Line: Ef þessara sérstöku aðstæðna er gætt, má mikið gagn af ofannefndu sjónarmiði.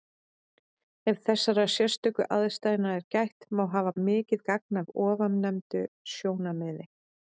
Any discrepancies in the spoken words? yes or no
yes